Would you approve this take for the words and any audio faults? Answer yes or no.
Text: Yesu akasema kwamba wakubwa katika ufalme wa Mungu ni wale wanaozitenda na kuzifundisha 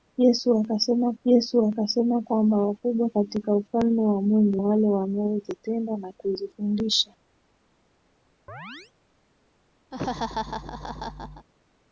no